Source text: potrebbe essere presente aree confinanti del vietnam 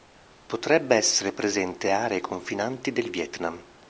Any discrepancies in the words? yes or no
no